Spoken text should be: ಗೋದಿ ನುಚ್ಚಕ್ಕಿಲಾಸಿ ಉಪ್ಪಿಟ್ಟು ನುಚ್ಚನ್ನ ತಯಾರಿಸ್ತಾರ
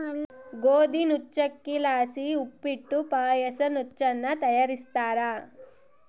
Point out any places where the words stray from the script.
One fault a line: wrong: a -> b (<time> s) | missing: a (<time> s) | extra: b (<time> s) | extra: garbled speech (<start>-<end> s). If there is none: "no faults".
extra: ಪಾಯಸ (3.0 s)